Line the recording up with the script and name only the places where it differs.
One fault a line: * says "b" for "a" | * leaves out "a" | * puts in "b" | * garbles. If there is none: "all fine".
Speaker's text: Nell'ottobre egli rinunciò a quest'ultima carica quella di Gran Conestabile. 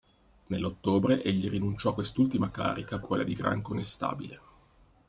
all fine